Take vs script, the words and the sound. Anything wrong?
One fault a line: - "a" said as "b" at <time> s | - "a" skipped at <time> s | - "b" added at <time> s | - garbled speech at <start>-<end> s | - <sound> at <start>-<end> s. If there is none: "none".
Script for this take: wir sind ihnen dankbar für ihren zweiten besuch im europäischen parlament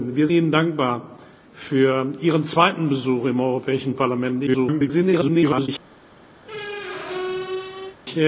- "sind" skipped at 0.3 s
- garbled speech at 4.5-5.7 s
- squeak at 6.4-8.0 s